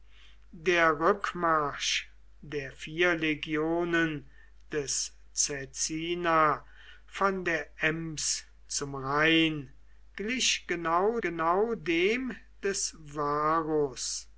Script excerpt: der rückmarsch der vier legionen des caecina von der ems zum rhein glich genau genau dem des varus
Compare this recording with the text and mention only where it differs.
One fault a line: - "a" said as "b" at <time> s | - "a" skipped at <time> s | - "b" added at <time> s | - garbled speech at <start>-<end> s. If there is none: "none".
none